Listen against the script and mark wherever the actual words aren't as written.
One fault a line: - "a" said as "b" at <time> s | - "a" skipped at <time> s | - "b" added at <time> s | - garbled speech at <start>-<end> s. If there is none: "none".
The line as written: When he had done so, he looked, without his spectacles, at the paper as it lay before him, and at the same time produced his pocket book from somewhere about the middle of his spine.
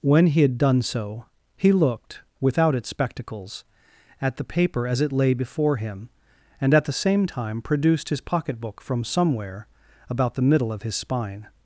- "his" said as "its" at 2.7 s